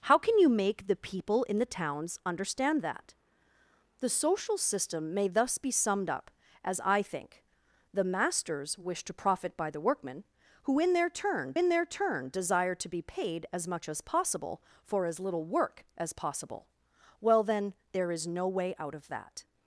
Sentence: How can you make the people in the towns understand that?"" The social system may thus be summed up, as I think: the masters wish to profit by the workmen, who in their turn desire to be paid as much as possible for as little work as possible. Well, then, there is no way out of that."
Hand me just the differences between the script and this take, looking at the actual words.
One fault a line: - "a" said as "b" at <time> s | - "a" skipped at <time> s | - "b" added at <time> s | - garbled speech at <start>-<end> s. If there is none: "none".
- "in their turn" added at 11.5 s